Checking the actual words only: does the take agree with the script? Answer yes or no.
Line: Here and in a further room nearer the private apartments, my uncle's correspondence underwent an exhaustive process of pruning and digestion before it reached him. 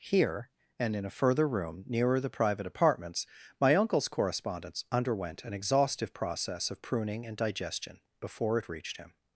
yes